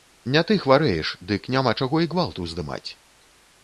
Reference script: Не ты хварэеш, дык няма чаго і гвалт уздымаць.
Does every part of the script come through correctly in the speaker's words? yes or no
yes